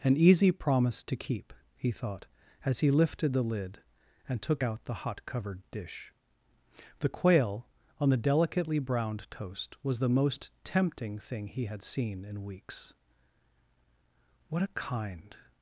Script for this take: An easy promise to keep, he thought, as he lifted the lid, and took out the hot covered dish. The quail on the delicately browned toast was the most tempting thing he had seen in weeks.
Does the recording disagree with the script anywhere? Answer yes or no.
yes